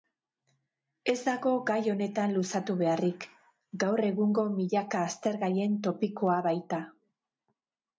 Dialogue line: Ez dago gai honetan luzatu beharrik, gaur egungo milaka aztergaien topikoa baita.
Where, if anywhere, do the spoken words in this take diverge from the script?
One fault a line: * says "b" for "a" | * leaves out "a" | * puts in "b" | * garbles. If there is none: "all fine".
all fine